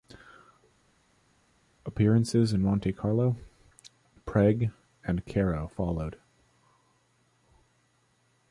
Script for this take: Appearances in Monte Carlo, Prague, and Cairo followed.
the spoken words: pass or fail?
pass